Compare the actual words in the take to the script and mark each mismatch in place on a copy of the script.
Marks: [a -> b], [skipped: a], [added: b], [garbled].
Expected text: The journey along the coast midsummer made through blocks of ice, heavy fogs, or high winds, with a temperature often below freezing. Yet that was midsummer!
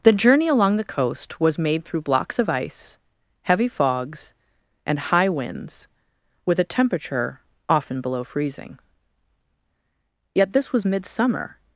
The journey along the coast [midsummer -> was] made through blocks of ice, heavy fogs, [or -> and] high winds, with a temperature often below freezing. Yet [that -> this] was midsummer!